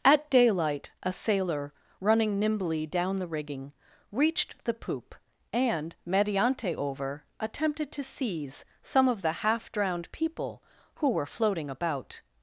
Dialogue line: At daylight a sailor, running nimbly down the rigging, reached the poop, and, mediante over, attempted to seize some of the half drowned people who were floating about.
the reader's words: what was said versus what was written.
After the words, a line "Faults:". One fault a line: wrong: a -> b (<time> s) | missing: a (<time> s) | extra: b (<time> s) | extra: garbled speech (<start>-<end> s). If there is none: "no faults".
At daylight a sailor, running nimbly down the rigging, reached the poop, and, mediante over, attempted to seize some of the half drowned people who were floating about.
Faults:
no faults